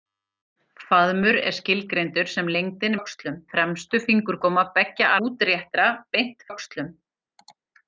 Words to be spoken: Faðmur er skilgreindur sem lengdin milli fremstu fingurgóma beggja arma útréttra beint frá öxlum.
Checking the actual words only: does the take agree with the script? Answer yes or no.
no